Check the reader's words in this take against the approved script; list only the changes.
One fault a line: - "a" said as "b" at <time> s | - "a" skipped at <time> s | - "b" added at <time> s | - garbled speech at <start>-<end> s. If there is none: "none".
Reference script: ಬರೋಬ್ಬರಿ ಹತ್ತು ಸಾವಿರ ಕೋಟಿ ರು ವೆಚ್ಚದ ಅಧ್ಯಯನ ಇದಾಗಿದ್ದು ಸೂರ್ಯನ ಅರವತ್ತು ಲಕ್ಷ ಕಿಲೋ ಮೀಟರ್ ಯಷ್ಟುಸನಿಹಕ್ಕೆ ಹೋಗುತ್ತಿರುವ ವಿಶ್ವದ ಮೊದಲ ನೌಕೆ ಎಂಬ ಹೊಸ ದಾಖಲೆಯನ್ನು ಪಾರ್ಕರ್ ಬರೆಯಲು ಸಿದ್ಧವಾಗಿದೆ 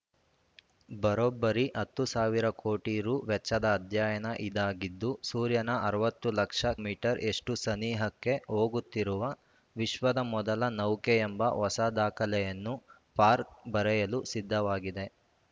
- "ಕಿಲೋ" skipped at 6.7 s